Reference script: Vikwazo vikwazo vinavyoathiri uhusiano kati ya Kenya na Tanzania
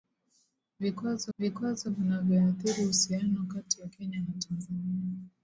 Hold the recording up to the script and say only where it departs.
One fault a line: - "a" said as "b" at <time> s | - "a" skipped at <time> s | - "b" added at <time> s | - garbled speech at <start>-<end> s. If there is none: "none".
none